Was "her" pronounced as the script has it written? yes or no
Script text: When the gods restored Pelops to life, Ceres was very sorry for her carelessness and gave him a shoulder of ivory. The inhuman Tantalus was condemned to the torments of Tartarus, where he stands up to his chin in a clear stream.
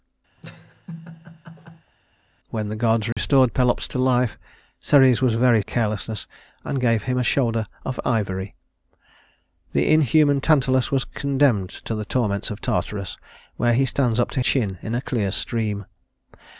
no